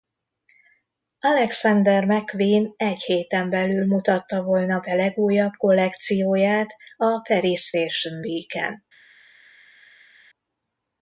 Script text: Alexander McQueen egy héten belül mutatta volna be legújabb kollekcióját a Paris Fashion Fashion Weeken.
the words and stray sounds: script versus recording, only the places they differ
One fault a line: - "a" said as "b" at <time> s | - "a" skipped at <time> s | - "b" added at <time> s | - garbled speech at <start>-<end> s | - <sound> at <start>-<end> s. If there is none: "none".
- "Fashion" skipped at 8.2 s